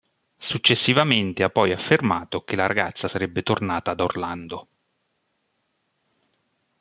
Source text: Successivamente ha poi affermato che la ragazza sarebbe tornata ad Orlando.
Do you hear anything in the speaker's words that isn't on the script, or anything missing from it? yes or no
no